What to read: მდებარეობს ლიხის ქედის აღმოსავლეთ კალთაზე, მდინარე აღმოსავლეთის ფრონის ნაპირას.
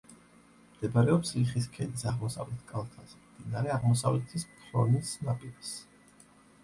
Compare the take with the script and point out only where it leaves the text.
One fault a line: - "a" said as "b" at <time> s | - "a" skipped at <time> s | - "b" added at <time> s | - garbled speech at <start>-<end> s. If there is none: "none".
none